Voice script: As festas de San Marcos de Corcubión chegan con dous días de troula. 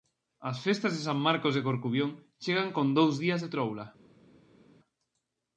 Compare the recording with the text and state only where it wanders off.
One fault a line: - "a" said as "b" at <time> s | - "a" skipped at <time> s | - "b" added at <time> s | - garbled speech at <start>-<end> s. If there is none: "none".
none